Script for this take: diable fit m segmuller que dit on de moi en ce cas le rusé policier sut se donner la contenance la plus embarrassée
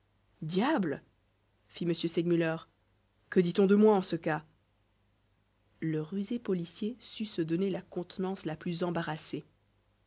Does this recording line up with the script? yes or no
yes